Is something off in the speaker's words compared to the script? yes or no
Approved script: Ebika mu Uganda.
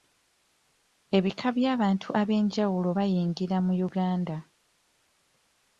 yes